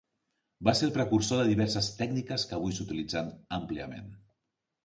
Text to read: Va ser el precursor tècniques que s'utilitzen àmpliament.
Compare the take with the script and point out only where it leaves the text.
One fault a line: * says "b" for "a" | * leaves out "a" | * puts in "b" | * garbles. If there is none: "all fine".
* puts in "de diverses"
* puts in "avui"